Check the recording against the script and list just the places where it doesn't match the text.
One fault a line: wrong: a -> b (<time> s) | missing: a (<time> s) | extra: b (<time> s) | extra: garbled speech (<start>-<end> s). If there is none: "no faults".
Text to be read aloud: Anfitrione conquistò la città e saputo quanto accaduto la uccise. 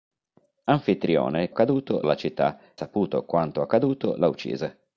wrong: conquistò -> accaduto (1.5 s)
missing: e (2.6 s)